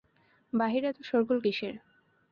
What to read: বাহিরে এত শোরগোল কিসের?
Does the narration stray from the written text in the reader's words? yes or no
no